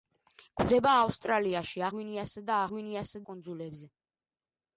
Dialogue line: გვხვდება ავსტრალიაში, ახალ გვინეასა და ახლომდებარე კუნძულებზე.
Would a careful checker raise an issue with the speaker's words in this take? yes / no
yes